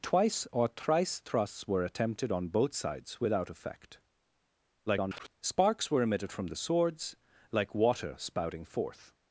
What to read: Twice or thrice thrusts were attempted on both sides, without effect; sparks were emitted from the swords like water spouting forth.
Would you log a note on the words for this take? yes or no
yes